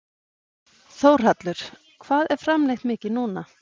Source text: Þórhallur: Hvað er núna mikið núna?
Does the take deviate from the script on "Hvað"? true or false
false